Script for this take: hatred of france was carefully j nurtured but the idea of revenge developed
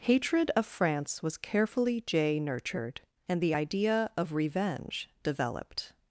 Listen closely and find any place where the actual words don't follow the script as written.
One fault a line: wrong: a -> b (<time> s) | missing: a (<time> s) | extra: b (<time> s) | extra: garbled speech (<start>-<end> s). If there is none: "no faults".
wrong: but -> and (3.3 s)